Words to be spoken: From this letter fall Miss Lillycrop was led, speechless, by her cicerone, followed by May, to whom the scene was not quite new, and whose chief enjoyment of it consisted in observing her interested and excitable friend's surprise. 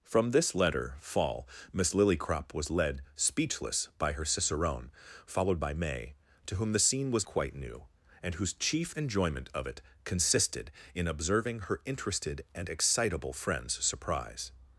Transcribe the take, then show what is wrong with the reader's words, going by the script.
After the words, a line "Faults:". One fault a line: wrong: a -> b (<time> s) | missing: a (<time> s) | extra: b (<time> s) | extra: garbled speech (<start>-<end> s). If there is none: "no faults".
From this letter fall Miss Lillycrop was led, speechless, by her cicerone, followed by May, to whom the scene was quite new, and whose chief enjoyment of it consisted in observing her interested and excitable friend's surprise.
Faults:
missing: not (7.3 s)